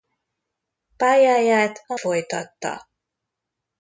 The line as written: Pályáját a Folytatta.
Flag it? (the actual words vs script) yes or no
no